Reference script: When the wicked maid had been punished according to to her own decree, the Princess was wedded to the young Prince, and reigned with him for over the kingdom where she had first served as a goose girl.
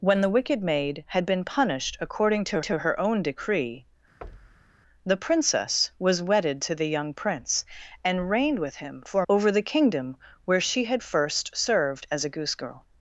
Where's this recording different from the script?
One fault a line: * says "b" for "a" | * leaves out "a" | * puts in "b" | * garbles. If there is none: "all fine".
all fine